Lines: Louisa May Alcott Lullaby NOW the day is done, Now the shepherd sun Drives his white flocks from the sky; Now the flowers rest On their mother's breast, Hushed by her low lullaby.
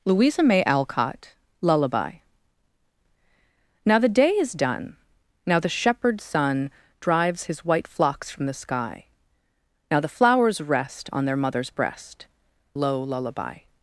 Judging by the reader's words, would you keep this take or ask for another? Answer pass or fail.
fail